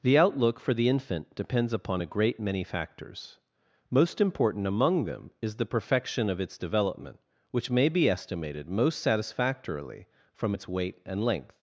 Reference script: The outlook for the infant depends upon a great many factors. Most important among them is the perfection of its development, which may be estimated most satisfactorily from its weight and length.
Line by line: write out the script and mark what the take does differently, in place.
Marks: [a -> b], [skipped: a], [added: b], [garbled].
The outlook for the infant depends upon a great many factors. Most important among them is the perfection of its development, which may be estimated most satisfactorily from its weight and length.